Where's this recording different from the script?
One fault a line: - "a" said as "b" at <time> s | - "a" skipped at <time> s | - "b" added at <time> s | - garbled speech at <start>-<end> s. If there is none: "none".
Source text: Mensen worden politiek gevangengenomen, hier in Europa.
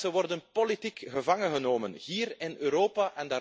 none